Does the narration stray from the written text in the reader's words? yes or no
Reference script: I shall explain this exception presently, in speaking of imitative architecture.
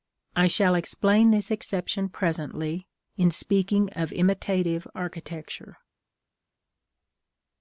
no